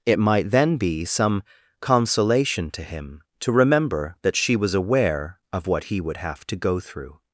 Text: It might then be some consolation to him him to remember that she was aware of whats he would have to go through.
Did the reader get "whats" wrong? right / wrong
wrong